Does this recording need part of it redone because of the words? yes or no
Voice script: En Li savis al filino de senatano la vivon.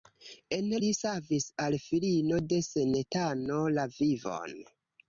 no